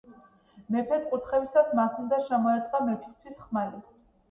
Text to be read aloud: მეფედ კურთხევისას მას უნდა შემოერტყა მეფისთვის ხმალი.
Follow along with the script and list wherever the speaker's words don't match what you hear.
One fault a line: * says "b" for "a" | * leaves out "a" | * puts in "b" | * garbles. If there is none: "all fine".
all fine